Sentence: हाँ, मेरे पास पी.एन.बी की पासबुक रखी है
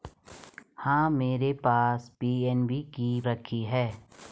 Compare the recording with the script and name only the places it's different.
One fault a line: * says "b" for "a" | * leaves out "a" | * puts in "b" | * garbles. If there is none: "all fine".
* leaves out "पासबुक"